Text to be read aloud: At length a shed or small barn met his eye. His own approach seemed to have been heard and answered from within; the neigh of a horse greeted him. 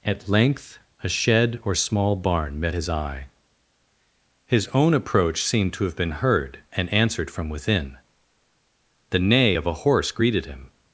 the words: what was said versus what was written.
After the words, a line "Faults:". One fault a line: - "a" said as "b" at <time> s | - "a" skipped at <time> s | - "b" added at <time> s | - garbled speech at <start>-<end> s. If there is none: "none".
At length a shed or small barn met his eye. His own approach seemed to have been heard and answered from within; the neigh of a horse greeted him.
Faults:
none